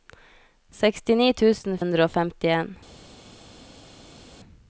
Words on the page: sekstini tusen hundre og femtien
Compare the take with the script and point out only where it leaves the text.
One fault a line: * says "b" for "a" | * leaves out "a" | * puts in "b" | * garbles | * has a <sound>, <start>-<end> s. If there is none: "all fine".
all fine